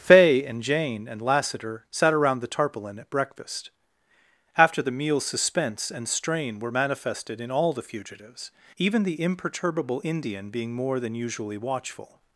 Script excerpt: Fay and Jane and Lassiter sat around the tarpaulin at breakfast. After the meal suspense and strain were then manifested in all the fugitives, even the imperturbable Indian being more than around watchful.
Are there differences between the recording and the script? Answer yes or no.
yes